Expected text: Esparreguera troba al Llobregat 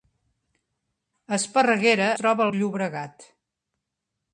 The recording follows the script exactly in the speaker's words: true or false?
true